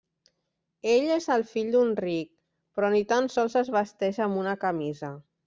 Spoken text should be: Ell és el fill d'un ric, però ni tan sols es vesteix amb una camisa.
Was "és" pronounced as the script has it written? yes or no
yes